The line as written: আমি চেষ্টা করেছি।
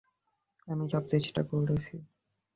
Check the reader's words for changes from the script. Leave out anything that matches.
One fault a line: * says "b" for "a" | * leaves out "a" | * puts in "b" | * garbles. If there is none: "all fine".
* puts in "সব"